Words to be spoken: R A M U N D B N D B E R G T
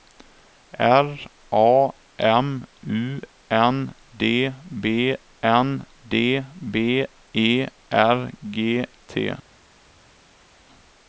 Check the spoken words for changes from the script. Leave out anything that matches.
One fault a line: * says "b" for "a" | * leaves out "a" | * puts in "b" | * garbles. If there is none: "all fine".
all fine